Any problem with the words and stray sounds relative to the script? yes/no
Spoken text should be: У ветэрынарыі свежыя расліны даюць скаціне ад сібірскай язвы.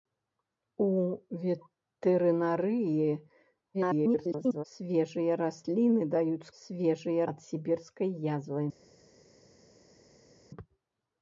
yes